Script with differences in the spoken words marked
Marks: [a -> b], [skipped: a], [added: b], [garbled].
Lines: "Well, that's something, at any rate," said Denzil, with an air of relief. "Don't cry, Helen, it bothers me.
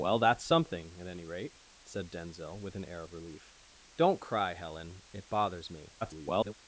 "Well, that's something, at any rate," said Denzil, with an air of relief. "Don't cry, Helen, it bothers me. [garbled]